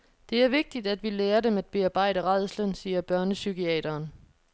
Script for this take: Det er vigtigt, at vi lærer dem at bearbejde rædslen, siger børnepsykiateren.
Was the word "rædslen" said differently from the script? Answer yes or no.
no